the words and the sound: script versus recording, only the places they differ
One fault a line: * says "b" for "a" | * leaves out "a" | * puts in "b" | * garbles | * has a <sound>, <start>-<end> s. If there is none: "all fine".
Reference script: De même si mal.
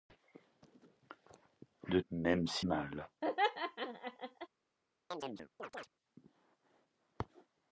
* has a laugh, 3.2-4.5 s
* has a chirp, 5.1-5.9 s